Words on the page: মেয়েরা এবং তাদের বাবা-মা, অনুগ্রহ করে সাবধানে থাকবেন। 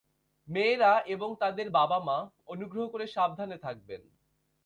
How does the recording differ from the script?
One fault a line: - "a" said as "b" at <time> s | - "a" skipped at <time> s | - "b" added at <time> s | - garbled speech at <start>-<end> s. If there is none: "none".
none